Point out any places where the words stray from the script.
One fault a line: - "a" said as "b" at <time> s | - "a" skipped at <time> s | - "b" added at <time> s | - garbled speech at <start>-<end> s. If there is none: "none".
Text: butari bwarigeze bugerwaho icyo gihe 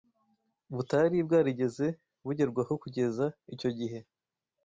- "kugeza" added at 2.8 s